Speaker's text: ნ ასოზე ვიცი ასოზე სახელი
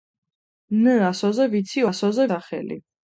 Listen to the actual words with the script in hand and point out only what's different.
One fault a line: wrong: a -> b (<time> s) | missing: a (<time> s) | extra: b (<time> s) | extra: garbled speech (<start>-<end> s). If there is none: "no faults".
no faults